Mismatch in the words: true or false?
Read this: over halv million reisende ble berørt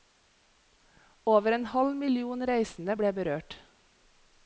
true